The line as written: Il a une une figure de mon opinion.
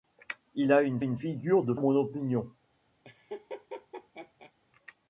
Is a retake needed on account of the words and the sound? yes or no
yes